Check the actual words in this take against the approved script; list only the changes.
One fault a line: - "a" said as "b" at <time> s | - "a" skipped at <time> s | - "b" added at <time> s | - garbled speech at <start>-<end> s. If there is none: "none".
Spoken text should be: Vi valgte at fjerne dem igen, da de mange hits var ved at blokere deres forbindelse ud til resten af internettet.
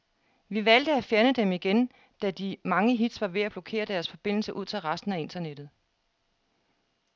none